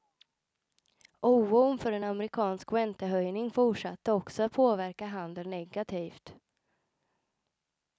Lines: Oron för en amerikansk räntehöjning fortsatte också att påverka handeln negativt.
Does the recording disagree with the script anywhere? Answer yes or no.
no